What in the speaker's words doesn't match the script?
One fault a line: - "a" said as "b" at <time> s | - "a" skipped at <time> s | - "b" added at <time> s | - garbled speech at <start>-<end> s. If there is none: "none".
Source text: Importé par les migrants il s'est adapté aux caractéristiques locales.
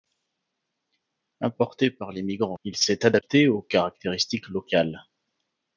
none